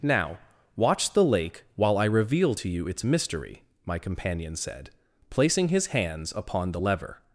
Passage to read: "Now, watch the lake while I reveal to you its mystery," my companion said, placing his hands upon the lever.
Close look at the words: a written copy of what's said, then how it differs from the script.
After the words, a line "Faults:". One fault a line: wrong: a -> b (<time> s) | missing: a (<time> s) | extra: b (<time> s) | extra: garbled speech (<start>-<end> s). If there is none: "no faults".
"Now, watch the lake while I reveal to you its mystery," my companion said, placing his hands upon the lever.
Faults:
no faults